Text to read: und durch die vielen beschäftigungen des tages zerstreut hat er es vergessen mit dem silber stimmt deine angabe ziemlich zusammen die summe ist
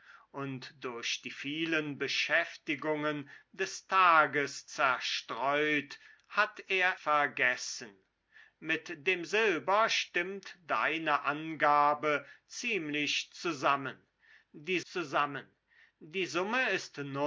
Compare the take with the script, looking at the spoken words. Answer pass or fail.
fail